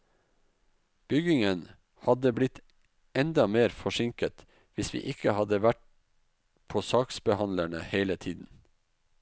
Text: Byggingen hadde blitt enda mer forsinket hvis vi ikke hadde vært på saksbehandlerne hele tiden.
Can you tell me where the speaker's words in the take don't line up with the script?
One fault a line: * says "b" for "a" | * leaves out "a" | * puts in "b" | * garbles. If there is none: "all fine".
all fine